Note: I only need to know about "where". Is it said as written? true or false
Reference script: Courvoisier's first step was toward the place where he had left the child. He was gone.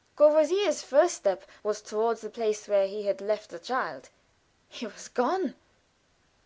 true